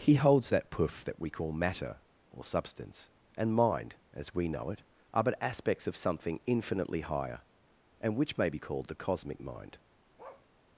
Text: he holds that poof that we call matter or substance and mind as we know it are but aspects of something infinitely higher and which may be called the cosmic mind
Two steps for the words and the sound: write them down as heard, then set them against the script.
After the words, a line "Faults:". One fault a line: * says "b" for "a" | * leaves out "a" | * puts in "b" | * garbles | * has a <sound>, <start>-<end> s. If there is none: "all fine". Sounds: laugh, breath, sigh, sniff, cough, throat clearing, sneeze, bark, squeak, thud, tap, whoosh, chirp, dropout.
he holds that poof that we call matter or substance and mind as we know it are but aspects of something infinitely higher and which may be called the cosmic mind
Faults:
* has a bark, 10.2-10.5 s